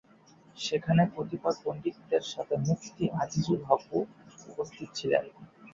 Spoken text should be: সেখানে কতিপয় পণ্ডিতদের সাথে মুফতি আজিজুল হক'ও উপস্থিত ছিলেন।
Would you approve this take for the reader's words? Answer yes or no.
yes